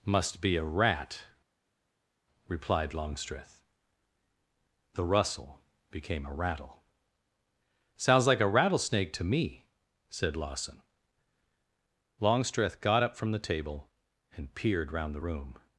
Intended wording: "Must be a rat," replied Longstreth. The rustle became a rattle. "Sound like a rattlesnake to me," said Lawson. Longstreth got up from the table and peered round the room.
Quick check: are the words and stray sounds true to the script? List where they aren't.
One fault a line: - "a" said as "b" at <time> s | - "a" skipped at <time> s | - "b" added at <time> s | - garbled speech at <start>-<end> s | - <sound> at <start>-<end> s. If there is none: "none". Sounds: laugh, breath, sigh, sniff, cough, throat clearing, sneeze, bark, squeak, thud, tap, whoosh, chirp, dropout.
- "Sound" said as "Sounds" at 8.0 s